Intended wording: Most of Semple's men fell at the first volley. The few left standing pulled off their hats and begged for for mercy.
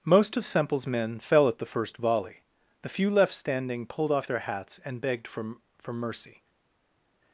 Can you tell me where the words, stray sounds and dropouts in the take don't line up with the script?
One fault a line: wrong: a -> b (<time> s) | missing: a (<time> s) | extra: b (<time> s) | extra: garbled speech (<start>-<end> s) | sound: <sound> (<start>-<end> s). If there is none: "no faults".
no faults